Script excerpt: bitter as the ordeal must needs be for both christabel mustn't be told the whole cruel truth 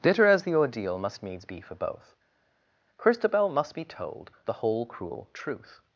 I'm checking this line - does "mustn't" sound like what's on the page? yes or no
no